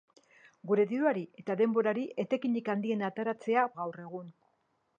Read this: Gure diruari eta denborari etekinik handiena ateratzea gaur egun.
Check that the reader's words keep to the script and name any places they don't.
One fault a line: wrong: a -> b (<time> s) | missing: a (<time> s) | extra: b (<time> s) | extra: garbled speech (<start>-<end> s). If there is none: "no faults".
no faults